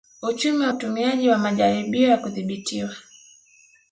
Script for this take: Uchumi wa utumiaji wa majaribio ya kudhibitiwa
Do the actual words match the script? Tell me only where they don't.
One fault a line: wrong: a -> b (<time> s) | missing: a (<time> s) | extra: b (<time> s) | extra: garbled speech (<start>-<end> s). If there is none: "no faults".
no faults